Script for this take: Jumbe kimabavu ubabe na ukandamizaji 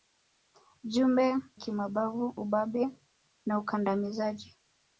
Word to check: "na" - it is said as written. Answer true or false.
true